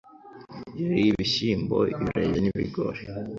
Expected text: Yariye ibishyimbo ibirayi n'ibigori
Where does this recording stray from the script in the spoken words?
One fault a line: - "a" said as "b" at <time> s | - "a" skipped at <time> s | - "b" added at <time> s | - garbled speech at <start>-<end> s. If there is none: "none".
none